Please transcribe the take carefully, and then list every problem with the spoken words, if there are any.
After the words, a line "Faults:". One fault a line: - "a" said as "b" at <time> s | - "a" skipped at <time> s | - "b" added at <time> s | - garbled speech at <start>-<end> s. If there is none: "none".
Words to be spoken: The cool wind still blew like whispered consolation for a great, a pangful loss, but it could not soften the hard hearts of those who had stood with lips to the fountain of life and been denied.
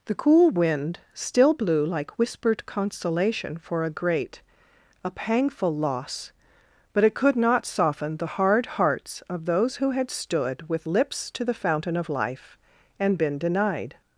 The cool wind still blew like whispered consolation for a great, a pangful loss, but it could not soften the hard hearts of those who had stood with lips to the fountain of life and been denied.
Faults:
none